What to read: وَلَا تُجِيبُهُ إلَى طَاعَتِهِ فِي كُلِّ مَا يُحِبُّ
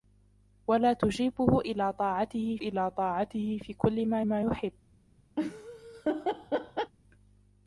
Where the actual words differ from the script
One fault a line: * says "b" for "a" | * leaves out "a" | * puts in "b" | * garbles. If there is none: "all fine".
* puts in "إلَى طَاعَتِهِ"
* puts in "مَا"